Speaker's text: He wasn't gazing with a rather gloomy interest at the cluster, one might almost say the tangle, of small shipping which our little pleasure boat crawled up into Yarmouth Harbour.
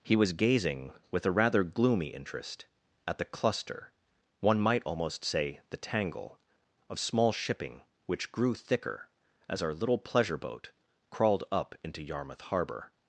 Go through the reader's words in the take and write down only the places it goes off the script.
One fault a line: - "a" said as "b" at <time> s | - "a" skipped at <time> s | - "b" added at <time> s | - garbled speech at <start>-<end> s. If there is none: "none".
- "wasn't" said as "was" at 0.1 s
- "grew thicker as" added at 8.3 s